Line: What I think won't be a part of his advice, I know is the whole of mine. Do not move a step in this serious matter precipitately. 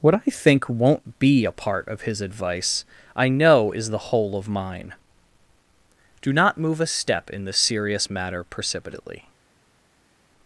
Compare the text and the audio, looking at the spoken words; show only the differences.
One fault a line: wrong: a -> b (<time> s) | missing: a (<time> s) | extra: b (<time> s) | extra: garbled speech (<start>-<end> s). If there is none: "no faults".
no faults